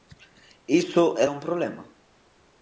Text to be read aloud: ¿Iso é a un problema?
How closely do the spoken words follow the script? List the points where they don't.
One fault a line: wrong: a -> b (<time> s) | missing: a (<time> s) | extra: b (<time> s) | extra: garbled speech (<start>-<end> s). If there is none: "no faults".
no faults